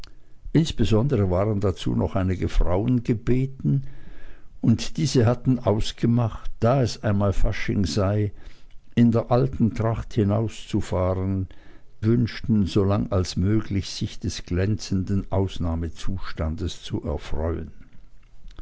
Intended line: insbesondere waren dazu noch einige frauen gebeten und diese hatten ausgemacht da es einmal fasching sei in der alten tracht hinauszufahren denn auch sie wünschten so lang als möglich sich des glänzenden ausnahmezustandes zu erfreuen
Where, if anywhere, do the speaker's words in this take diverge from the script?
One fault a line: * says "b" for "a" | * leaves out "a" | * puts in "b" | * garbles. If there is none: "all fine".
* leaves out "denn auch sie"